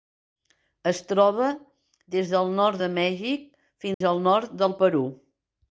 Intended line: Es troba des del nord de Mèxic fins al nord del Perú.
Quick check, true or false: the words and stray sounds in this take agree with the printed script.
false